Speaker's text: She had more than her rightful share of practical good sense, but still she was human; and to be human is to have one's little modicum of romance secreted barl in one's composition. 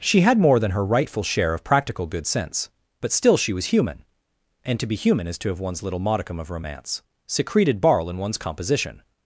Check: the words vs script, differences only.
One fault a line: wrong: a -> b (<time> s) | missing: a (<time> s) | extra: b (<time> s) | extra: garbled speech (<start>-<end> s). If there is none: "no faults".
no faults